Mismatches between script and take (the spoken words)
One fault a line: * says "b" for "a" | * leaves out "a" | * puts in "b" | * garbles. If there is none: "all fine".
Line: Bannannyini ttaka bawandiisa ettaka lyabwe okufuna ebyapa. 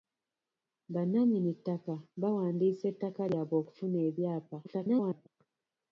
* garbles